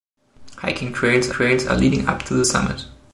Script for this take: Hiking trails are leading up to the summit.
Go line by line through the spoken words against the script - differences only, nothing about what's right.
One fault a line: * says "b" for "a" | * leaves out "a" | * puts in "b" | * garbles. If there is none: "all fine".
* puts in "trails"